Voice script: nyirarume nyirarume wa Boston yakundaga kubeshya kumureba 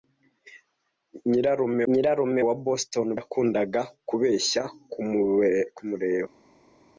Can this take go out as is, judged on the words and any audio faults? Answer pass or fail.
pass